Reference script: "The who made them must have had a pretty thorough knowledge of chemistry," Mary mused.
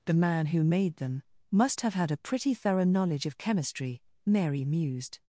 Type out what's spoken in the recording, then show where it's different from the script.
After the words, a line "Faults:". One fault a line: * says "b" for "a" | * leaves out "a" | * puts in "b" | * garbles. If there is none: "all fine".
"The man who made them must have had a pretty thorough knowledge of chemistry," Mary mused.
Faults:
* puts in "man"